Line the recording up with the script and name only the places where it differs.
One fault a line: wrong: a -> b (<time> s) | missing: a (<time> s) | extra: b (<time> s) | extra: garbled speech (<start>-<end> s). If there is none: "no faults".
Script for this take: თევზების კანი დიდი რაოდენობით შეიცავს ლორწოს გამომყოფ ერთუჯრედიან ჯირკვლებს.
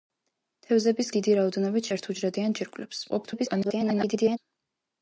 missing: კანი (1.1 s)
missing: შეიცავს ლორწოს გამომყოფ (1.9 s)
extra: garbled speech (3.1-4.4 s)